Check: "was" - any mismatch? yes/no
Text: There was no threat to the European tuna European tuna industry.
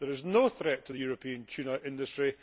yes